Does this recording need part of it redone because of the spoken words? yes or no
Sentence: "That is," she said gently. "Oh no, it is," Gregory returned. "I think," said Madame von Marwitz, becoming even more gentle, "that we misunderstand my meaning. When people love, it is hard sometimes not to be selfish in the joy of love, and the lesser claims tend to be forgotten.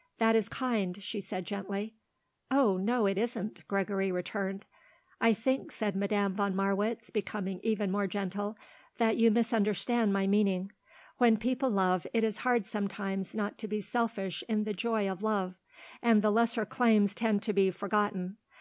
yes